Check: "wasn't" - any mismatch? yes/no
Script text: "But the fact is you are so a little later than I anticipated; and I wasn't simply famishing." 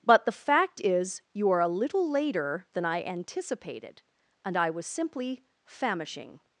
yes